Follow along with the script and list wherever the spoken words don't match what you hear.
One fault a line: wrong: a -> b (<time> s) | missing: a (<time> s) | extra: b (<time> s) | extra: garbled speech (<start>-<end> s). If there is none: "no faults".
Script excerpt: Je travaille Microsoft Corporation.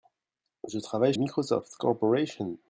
no faults